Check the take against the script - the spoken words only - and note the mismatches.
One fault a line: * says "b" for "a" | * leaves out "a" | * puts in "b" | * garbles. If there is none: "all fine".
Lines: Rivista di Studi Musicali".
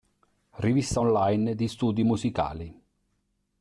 * puts in "online"